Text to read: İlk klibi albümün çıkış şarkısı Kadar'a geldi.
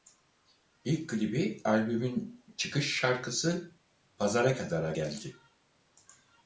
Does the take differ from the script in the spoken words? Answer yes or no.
yes